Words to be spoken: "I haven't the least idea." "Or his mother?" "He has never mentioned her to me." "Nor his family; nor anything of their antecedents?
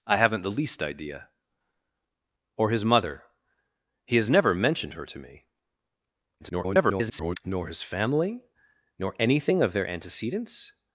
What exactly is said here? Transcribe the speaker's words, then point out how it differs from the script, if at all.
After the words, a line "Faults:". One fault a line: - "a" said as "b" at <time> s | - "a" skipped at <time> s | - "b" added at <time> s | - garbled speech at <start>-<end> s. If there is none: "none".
"I haven't the least idea." "Or his mother?" "He has never mentioned her to me." [garbled] "Nor his family; nor anything of their antecedents?
Faults:
- garbled speech at 6.4-7.4 s